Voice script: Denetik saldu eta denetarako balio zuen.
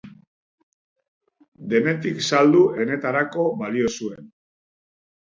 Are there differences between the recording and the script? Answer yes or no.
yes